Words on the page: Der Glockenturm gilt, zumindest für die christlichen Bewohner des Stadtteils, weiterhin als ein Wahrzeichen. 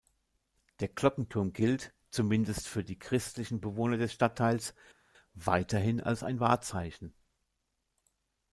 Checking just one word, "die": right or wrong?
right